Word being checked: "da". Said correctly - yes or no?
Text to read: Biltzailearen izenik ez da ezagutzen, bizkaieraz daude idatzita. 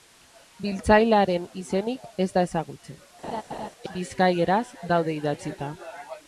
yes